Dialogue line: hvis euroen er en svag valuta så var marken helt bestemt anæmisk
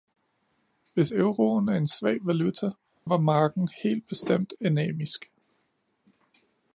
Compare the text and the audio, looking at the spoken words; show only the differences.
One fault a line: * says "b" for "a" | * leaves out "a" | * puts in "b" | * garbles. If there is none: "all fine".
* leaves out "så"